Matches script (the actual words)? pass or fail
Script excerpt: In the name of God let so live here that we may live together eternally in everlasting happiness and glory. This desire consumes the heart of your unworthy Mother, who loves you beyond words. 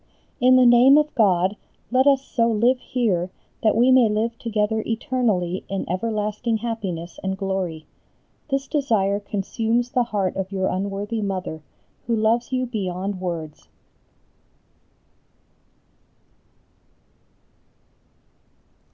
fail